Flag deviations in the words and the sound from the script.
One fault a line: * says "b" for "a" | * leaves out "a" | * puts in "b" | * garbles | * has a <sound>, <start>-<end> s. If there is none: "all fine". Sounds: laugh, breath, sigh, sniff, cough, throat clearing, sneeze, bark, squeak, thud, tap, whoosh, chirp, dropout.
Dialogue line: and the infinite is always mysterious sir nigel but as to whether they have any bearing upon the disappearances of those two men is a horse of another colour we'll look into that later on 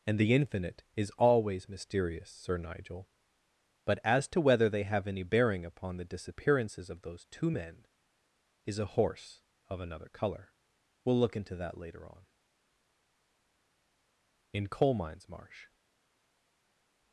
* puts in "in coal mines marsh"